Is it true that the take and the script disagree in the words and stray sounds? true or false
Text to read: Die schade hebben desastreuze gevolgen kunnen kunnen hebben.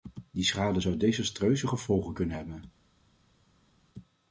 true